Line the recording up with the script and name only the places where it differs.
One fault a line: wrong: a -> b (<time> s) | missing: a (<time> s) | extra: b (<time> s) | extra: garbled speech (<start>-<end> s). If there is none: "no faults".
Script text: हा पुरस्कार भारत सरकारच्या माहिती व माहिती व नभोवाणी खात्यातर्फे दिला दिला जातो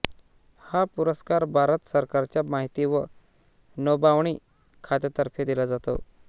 missing: माहिती व (3.0 s)
missing: दिला (5.7 s)